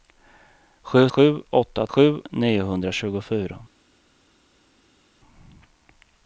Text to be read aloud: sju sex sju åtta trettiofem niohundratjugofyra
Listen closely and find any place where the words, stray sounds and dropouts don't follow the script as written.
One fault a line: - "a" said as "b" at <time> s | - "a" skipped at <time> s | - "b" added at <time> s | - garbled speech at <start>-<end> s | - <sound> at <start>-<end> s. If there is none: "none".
- "sex" skipped at 1.1 s
- "trettiofem" said as "sju" at 1.9 s